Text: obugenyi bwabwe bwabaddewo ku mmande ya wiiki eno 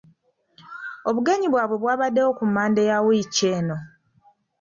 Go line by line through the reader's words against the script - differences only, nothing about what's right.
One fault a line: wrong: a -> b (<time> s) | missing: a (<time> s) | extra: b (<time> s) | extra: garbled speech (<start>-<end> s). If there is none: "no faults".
no faults